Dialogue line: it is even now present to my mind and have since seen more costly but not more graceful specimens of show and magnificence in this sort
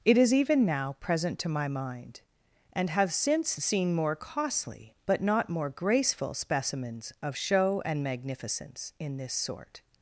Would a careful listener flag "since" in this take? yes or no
no